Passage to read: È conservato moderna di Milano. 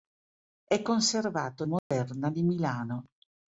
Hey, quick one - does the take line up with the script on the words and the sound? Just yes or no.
no